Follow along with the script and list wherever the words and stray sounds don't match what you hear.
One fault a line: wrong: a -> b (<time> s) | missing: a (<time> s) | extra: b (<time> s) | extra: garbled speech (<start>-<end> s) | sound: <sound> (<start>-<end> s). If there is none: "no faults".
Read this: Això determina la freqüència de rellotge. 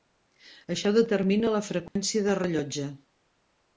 sound: dropout (1.9-2.0 s)